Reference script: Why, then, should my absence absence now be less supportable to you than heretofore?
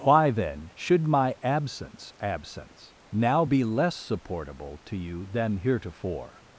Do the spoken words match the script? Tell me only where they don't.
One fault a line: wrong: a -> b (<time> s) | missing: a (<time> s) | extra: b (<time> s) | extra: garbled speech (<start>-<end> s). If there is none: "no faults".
no faults